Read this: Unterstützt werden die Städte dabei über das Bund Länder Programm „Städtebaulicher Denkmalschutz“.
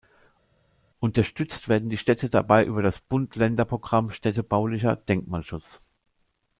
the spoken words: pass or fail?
pass